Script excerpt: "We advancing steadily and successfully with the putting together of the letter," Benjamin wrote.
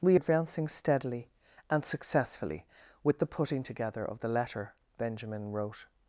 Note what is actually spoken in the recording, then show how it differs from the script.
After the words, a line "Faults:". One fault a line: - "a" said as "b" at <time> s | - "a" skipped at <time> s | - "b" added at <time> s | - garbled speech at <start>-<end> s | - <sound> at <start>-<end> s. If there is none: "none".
"We advancing steadily and successfully with the putting together of the letter," Benjamin wrote.
Faults:
none